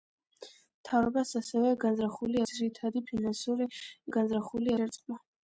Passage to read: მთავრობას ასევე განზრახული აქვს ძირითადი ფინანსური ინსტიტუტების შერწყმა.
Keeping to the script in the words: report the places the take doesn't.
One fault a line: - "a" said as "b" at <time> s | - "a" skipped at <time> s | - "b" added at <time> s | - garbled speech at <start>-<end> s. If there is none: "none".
- "აქვს" skipped at 2.4 s
- "ინსტიტუტების" said as "განზრახული" at 4.2 s